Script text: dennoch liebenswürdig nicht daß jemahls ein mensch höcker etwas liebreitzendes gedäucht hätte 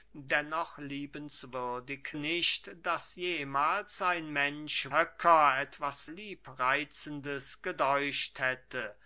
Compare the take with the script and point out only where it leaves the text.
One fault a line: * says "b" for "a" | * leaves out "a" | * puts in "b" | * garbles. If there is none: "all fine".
all fine